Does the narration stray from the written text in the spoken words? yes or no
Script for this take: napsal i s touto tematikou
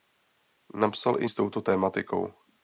no